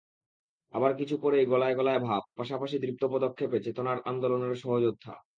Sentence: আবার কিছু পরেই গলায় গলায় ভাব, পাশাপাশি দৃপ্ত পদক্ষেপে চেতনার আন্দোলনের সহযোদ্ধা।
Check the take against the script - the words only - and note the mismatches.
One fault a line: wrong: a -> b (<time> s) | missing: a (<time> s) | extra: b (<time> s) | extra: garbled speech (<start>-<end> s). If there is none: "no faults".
no faults